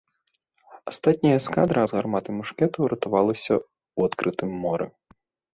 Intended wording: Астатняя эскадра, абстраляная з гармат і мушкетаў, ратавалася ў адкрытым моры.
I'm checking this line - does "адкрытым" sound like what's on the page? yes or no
yes